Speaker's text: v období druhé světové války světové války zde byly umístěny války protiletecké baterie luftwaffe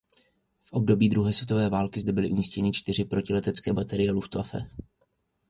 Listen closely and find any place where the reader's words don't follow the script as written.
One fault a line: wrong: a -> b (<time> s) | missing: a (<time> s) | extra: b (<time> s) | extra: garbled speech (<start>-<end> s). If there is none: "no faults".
missing: světové války (2.0 s)
wrong: války -> čtyři (2.7 s)